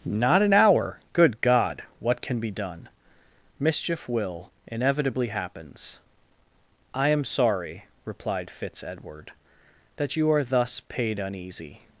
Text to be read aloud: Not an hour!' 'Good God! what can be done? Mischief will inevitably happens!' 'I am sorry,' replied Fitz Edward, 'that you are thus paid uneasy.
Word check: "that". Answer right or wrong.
right